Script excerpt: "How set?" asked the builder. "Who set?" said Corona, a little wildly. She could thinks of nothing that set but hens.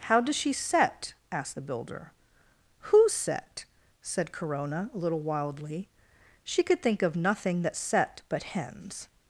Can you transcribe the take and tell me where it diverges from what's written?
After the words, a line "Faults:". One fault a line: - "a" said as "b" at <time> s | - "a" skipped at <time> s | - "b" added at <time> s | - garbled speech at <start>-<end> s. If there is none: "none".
"How does she set?" asked the builder. "Who set?" said Corona, a little wildly. She could think of nothing that set but hens.
Faults:
- "does she" added at 0.2 s
- "thinks" said as "think" at 6.8 s